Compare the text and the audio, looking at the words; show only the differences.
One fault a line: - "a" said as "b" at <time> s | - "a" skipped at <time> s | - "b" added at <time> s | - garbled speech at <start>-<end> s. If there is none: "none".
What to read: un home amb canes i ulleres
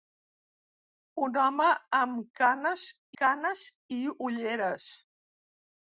- "canes" added at 3.2 s